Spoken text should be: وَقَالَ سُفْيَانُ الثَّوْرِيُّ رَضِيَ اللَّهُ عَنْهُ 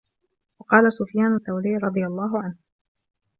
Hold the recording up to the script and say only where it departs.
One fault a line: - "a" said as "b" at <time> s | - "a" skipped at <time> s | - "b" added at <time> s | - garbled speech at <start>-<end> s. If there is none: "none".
none